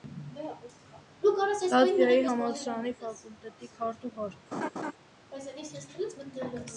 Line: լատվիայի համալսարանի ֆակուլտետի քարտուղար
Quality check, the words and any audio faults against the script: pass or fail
fail